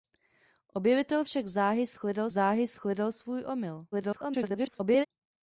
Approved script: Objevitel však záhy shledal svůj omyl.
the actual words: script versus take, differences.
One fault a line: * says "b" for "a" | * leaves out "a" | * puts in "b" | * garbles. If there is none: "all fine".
* puts in "záhy shledal"
* garbles